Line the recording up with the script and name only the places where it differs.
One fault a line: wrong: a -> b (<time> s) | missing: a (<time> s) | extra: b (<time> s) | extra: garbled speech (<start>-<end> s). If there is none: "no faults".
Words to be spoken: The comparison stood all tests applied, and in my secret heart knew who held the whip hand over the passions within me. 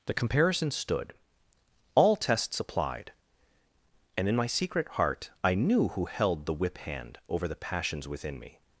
extra: I (5.4 s)